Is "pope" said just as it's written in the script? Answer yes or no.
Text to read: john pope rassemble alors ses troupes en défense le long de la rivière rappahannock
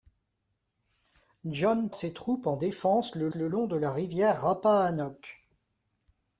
no